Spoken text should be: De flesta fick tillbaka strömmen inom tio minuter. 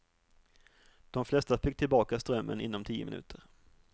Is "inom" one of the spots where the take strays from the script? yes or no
no